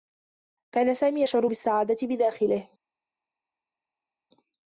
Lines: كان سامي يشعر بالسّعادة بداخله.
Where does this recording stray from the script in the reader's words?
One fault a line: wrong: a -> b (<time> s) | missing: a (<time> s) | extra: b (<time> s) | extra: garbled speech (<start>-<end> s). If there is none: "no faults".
no faults